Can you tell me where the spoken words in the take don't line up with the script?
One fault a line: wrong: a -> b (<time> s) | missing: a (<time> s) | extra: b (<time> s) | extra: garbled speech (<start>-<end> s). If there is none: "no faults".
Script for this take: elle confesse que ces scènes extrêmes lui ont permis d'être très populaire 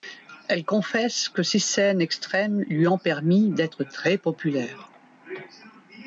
no faults